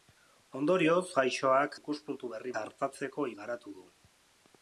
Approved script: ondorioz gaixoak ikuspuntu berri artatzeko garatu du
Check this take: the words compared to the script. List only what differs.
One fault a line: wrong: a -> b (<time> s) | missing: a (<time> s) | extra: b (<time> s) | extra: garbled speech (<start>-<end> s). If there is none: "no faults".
no faults